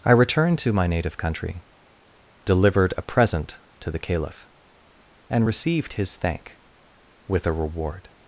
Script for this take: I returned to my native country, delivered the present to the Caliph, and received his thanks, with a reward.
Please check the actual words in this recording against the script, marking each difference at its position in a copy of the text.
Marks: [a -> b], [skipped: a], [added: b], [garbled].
I returned to my native country, delivered [the -> a] present to the Caliph, and received his [thanks, -> thank] with a reward.